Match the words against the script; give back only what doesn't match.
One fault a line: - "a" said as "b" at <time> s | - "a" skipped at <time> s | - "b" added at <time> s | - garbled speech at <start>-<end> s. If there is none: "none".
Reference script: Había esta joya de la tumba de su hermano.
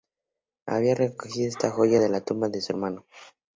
- "recogido" added at 0.9 s